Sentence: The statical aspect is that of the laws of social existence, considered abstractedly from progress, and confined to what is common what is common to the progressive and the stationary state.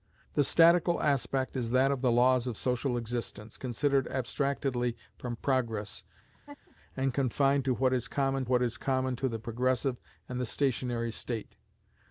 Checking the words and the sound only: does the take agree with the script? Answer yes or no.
no